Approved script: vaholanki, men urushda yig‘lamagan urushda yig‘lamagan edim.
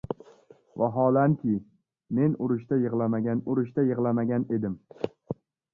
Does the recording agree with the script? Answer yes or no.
yes